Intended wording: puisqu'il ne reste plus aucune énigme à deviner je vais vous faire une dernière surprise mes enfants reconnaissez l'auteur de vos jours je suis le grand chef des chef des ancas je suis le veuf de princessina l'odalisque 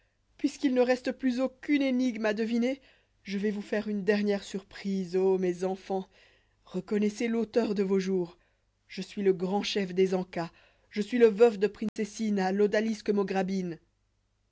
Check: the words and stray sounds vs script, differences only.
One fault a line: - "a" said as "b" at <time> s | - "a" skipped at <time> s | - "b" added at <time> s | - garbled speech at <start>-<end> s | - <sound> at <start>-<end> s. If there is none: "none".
- "ô" added at 5.2 s
- "chef des" skipped at 10.2 s
- dropout at 11.9-12.0 s